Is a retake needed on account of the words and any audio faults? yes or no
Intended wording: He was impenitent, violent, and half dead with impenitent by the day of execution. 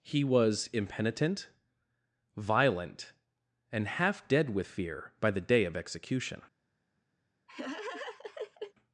yes